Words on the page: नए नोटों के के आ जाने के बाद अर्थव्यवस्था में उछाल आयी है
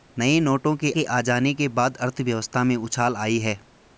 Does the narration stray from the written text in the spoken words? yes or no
no